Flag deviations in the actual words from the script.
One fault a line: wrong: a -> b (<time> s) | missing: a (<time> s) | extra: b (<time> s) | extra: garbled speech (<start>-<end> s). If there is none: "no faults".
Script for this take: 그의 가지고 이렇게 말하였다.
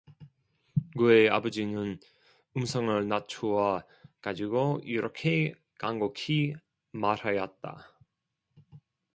extra: 아버지는 음성을 낮추어 (1.3 s)
extra: 간곡히 (5.8 s)